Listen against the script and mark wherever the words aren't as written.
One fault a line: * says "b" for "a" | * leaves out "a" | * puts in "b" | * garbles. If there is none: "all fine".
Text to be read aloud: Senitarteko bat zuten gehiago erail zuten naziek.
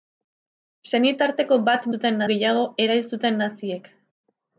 all fine